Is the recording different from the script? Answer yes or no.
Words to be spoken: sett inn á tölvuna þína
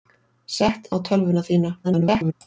yes